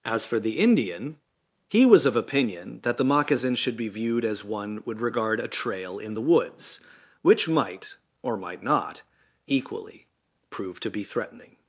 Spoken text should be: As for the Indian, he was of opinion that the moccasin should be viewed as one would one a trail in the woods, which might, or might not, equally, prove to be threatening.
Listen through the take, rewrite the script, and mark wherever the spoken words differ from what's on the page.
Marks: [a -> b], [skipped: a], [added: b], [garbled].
As for the Indian, he was of opinion that the moccasin should be viewed as one would [one -> regard] a trail in the woods, which might, or might not, equally, prove to be threatening.